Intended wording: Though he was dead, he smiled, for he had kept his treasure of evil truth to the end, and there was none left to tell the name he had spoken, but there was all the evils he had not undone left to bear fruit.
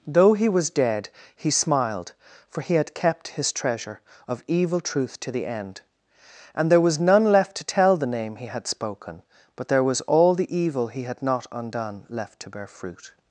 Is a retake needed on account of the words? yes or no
yes